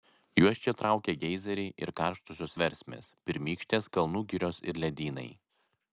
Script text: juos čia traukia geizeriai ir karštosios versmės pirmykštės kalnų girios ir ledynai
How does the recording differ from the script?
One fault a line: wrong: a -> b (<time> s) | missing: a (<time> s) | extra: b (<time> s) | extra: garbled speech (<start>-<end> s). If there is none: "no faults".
no faults